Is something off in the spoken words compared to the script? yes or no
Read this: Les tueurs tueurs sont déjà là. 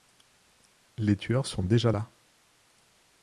yes